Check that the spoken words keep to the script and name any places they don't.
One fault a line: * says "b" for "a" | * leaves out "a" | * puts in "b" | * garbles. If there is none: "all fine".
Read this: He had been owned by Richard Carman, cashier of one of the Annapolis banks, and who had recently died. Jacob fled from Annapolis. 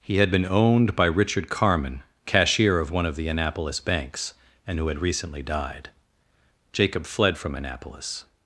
all fine